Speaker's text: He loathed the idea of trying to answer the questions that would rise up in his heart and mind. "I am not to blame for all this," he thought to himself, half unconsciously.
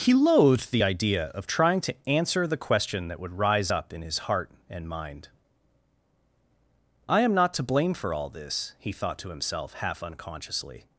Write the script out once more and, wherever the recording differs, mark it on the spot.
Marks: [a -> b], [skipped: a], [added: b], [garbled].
He loathed the idea of trying to answer the [questions -> question] that would rise up in his heart and mind. "I am not to blame for all this," he thought to himself, half unconsciously.